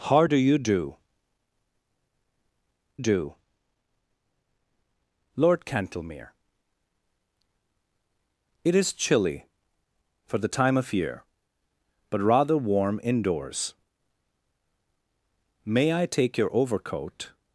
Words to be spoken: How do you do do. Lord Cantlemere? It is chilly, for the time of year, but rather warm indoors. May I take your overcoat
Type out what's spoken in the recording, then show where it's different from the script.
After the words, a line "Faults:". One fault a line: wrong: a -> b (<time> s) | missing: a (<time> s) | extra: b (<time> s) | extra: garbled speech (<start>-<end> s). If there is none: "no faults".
How do you do do. Lord Cantlemere? It is chilly, for the time of year, but rather warm indoors. May I take your overcoat
Faults:
no faults